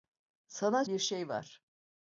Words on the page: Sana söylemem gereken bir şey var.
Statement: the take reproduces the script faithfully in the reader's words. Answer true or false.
false